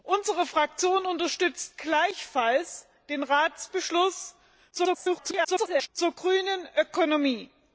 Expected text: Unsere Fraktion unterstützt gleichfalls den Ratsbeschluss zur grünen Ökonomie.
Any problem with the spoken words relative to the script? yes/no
yes